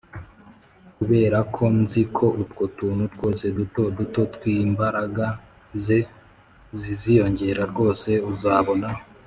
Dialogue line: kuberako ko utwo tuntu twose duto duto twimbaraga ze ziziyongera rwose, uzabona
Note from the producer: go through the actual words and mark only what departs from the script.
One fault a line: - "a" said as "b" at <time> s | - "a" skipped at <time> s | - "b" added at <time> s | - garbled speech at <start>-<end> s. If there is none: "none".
- "nzi" added at 1.8 s